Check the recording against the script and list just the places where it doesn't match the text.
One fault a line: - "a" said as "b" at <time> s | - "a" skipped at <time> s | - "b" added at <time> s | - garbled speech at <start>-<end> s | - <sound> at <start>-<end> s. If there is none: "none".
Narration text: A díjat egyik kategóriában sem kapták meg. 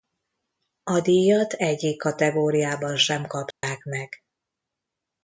- dropout at 3.5-3.6 s